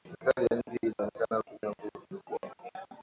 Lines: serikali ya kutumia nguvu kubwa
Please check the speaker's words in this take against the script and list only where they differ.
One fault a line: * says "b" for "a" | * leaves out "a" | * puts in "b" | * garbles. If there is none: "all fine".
* puts in "nchi hii inaonekana"